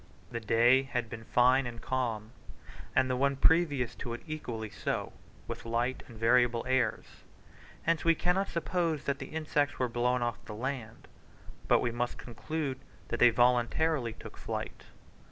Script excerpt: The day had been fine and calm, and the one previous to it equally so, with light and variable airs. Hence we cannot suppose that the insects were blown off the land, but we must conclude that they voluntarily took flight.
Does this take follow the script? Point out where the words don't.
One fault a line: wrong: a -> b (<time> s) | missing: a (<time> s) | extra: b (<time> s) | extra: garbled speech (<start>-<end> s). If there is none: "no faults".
no faults